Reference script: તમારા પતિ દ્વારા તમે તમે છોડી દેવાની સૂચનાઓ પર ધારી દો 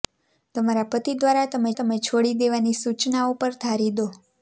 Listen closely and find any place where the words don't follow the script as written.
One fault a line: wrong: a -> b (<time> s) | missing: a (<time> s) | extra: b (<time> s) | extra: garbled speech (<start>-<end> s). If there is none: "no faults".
no faults